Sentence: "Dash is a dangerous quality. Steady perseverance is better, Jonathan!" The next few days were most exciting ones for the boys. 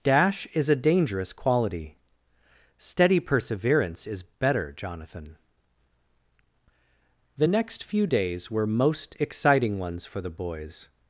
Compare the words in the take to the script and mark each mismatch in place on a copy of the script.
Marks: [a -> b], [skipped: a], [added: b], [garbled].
"Dash is a dangerous quality. Steady perseverance is better, Jonathan!" The next few days were most exciting ones for the boys.